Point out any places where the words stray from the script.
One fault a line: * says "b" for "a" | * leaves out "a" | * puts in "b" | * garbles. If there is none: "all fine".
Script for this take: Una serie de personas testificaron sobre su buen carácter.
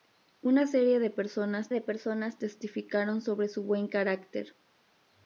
* puts in "de personas"